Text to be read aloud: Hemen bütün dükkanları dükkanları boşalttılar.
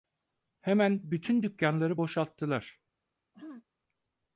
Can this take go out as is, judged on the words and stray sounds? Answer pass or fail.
fail